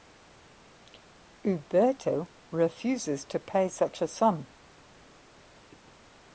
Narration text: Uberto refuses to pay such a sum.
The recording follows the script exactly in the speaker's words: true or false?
true